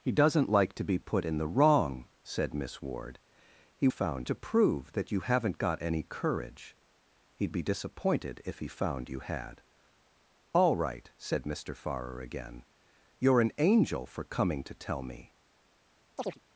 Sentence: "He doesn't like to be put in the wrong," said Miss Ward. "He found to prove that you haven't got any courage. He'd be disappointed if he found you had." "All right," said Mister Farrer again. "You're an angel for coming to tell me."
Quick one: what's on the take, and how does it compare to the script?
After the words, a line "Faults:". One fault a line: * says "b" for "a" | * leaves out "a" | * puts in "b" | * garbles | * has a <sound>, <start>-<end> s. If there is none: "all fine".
"He doesn't like to be put in the wrong," said Miss Ward. "He found to prove that you haven't got any courage. He'd be disappointed if he found you had." "All right," said Mister Farrer again. "You're an angel for coming to tell me."
Faults:
* has a chirp, 16.2-16.4 s